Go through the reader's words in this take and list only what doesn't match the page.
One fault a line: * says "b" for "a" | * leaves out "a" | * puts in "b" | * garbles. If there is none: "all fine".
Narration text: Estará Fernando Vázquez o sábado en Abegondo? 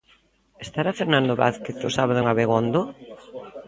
all fine